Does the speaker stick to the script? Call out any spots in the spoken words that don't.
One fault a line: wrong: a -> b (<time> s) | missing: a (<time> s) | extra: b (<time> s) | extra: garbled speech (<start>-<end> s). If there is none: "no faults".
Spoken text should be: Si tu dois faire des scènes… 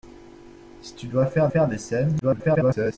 extra: faire (1.5 s)
extra: garbled speech (2.2-3.0 s)